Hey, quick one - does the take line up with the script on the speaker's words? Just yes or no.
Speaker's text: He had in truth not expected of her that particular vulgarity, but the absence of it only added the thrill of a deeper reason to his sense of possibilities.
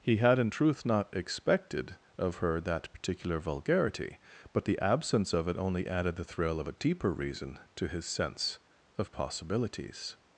yes